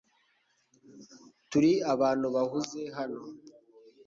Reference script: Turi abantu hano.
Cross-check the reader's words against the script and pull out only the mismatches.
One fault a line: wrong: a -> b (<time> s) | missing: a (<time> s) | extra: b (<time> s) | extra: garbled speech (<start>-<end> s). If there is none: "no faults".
extra: bahuze (2.4 s)